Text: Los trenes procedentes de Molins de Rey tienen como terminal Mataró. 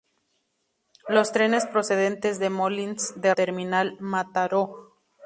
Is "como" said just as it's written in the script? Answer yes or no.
no